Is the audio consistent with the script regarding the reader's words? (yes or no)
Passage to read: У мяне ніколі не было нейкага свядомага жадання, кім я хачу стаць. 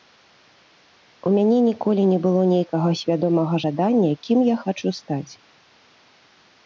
yes